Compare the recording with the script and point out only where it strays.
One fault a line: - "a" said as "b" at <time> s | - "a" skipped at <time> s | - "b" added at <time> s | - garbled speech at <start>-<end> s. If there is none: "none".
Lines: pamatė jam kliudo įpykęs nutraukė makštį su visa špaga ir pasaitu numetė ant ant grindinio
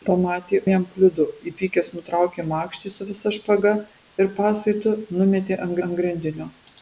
none